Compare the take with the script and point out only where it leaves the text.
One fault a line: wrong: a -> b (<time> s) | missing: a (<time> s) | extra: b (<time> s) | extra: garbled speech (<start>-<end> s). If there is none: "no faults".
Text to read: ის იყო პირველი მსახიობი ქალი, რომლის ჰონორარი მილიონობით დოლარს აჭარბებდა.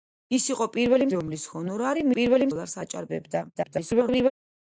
missing: მსახიობი ქალი (1.1 s)
wrong: მილიონობით -> პირველი (2.2 s)
extra: garbled speech (3.5-4.3 s)